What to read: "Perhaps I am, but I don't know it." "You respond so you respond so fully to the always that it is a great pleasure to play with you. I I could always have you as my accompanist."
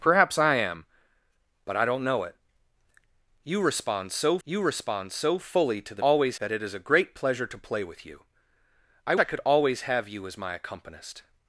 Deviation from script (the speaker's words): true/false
false